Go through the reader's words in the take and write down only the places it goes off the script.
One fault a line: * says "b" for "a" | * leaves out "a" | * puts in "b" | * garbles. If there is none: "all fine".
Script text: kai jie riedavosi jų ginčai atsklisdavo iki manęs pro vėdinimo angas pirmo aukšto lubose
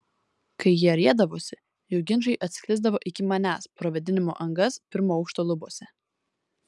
all fine